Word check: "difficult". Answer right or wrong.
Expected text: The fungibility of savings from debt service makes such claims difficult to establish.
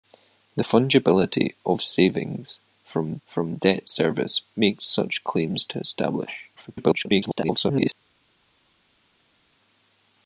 wrong